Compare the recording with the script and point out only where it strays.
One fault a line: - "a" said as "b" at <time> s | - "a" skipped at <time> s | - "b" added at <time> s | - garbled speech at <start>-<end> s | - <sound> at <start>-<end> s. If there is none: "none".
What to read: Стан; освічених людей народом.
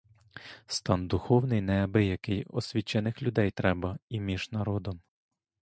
- "духовний неабиякий" added at 1.1 s
- "треба і між" added at 3.5 s